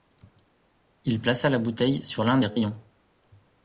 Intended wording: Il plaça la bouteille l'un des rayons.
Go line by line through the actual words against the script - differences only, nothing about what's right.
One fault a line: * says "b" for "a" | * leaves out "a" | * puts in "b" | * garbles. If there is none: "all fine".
* puts in "sur"